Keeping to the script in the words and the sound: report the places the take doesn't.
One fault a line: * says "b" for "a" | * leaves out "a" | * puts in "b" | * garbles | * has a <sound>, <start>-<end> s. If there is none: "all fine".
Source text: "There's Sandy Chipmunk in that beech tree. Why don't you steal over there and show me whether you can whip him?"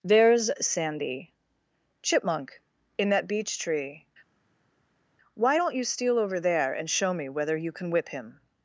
all fine